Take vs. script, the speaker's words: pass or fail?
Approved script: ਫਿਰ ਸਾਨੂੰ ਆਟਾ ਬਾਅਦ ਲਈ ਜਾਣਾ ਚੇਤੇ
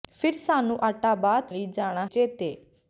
pass